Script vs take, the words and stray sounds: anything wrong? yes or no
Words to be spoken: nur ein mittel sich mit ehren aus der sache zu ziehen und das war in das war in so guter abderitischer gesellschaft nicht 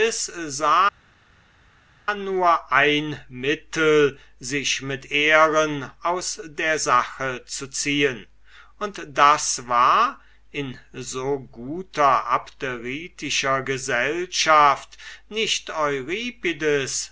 yes